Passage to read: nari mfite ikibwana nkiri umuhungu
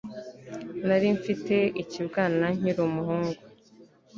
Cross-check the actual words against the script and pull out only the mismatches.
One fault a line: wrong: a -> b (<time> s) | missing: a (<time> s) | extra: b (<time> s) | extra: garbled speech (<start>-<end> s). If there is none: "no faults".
no faults